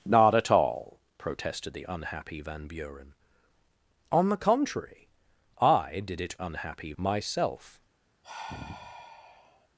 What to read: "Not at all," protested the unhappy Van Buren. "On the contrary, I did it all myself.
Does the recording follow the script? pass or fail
fail